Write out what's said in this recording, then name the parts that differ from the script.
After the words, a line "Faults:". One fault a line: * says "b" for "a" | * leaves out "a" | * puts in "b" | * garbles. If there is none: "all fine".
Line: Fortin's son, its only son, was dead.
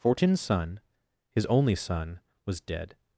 Fortin's son, his only son, was dead.
Faults:
* says "his" for "its"